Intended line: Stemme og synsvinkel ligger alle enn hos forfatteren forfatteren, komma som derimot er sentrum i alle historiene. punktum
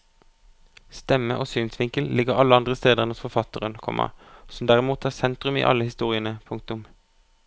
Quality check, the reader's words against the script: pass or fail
fail